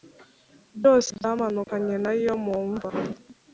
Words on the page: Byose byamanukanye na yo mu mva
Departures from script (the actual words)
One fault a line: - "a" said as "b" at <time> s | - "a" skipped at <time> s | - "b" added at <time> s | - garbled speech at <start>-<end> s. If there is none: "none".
none